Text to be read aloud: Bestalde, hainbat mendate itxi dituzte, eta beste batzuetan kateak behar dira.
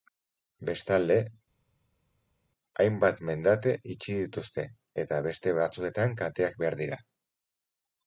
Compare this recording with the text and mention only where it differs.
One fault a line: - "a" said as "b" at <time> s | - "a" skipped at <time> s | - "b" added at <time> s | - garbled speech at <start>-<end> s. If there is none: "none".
none